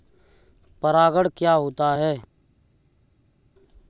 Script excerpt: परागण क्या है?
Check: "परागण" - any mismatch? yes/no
no